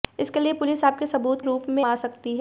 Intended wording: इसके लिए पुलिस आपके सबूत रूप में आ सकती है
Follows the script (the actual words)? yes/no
yes